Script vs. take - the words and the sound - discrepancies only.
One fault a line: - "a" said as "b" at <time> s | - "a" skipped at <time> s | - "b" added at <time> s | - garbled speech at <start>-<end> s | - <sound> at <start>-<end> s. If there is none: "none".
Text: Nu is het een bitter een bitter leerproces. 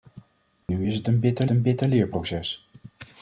- dropout at 0.6-0.7 s